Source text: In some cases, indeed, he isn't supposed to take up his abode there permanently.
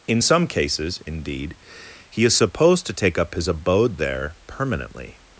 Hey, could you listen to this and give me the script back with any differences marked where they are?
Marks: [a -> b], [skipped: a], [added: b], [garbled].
In some cases, indeed, he [isn't -> is] supposed to take up his abode there permanently.